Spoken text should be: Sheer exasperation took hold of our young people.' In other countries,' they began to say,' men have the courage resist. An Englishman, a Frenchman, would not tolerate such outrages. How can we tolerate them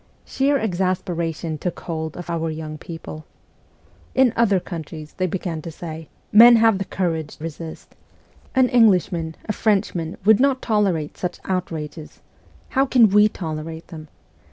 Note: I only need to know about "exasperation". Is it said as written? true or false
true